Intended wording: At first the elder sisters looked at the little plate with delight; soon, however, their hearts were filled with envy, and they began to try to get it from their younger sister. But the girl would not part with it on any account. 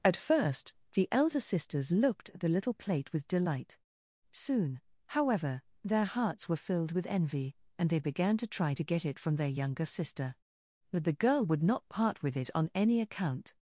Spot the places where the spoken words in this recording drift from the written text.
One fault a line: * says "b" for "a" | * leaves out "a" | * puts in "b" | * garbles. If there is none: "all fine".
all fine